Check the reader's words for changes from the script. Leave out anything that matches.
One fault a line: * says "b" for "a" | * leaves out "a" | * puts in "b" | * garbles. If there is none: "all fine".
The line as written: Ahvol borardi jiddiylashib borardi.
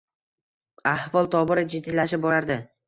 * says "tobora" for "borardi"